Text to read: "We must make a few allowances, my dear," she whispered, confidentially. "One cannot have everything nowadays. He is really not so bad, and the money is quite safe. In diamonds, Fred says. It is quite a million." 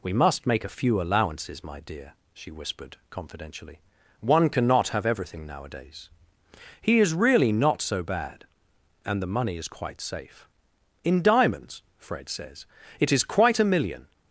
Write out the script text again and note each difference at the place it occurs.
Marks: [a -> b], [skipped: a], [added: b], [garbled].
"We must make a few allowances, my dear," she whispered, confidentially. "One cannot have everything nowadays. He is really not so bad, and the money is quite safe. In diamonds, Fred says. It is quite a million."